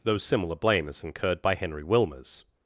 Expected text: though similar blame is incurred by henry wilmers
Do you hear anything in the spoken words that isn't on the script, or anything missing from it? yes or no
no